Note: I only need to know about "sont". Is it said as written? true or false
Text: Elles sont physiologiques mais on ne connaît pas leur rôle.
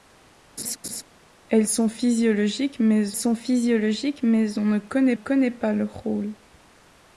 true